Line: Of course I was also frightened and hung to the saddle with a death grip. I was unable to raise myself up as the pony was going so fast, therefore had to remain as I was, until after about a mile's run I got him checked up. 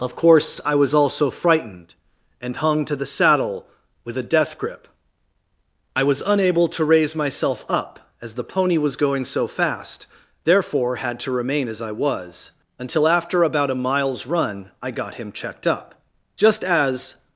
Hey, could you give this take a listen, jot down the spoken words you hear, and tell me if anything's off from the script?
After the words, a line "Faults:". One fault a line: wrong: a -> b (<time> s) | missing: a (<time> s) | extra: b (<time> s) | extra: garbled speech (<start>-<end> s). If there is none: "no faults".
Of course I was also frightened and hung to the saddle with a death grip. I was unable to raise myself up as the pony was going so fast, therefore had to remain as I was, until after about a mile's run I got him checked up. Just as
Faults:
extra: Just as (16.4 s)